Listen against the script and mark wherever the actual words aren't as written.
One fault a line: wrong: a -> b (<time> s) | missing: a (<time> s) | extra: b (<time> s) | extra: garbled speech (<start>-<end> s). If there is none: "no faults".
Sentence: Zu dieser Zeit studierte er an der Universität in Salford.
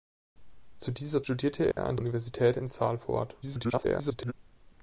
missing: Zeit (1.2 s)
missing: der (2.0 s)
extra: garbled speech (3.4-4.3 s)